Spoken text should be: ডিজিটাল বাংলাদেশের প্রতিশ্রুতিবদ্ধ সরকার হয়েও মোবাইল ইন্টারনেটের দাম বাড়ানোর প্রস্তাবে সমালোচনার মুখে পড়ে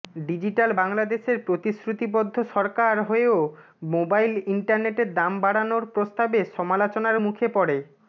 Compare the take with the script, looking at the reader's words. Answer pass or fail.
pass